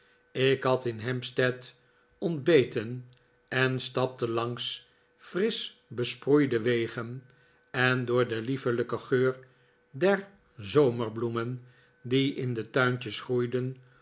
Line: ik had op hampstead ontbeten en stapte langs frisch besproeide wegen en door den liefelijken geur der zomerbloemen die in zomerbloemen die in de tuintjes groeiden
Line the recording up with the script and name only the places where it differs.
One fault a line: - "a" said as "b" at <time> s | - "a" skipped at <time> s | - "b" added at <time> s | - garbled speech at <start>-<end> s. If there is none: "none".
- "op" said as "in" at 0.8 s
- "zomerbloemen die in" skipped at 12.5 s